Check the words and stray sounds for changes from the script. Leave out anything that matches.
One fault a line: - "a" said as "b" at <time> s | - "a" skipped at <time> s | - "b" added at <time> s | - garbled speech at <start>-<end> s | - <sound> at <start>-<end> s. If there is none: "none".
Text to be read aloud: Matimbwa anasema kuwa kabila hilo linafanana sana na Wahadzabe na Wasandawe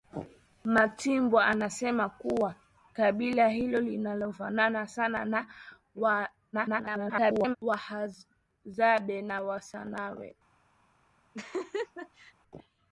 - garbled speech at 6.5-7.6 s
- laugh at 11.3-12.3 s